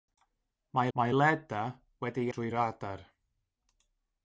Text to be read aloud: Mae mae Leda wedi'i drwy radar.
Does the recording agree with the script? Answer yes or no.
yes